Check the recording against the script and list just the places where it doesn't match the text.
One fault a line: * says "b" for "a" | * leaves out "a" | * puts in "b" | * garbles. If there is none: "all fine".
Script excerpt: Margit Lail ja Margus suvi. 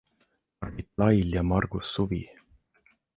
all fine